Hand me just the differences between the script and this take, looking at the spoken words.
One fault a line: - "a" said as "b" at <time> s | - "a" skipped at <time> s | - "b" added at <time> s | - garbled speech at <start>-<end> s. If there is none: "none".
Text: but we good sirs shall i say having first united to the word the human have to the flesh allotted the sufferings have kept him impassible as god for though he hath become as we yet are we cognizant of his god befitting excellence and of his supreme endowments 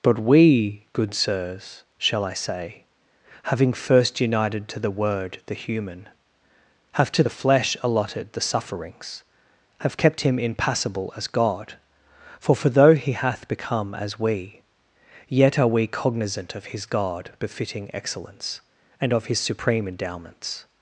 - "for" added at 12.5 s